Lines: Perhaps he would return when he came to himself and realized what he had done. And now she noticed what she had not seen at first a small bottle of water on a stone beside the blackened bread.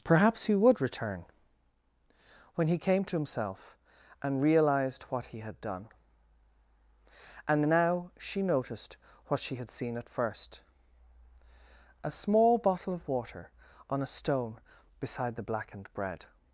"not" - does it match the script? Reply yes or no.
no